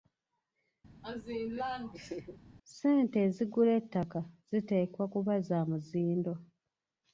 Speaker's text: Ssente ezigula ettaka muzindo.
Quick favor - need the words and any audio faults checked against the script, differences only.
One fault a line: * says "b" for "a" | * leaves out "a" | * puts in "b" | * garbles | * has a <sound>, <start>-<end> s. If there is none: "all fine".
* has a laugh, 1.0-2.4 s
* puts in "ziteekwa kuba za"